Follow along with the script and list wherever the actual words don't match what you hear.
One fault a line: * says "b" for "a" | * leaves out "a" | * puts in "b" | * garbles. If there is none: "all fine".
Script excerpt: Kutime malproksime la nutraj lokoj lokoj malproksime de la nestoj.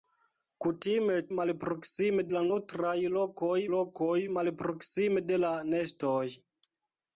all fine